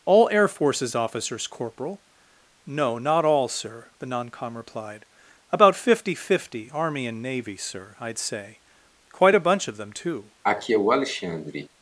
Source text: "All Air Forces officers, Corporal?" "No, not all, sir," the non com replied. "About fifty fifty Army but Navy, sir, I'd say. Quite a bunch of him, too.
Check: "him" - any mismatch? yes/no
yes